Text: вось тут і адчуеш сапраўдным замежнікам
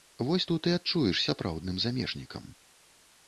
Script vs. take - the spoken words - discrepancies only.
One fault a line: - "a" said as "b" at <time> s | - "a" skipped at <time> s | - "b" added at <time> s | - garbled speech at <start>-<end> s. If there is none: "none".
none